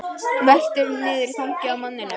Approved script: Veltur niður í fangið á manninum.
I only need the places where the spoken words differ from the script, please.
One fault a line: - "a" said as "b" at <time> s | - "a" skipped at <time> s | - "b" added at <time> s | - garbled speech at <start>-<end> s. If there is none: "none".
none